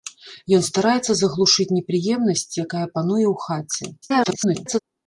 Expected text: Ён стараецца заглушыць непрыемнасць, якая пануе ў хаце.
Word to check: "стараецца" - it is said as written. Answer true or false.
true